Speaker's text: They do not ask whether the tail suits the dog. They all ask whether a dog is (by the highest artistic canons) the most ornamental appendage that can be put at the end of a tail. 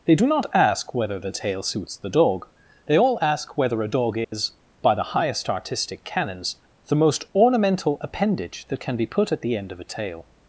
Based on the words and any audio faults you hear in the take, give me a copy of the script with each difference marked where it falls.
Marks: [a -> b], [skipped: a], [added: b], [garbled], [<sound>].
They do not ask whether the tail suits the dog. They all ask whether a dog is [dropout] (by the highest artistic canons) the most ornamental appendage that can be put at the end of a tail.